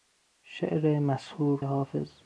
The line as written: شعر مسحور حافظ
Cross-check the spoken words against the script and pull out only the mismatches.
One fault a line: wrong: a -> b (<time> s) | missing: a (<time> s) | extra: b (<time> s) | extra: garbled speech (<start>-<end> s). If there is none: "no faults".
no faults